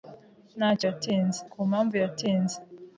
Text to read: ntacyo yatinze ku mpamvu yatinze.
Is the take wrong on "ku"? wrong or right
right